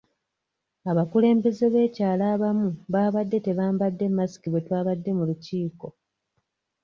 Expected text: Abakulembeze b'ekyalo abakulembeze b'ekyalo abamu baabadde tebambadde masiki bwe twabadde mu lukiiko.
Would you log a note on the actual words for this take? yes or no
yes